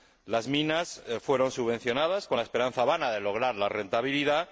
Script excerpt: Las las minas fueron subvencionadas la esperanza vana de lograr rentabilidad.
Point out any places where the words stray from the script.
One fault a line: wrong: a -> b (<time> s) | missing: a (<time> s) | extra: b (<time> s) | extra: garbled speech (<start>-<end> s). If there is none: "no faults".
missing: las (0.5 s)
extra: con (2.3 s)
extra: la (3.6 s)